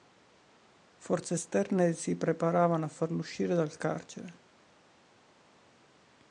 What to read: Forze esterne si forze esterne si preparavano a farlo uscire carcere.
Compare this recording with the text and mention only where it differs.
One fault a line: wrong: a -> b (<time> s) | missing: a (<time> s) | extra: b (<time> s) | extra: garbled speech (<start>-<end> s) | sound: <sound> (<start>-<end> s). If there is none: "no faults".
missing: forze esterne si (2.1 s)
extra: dal (3.5 s)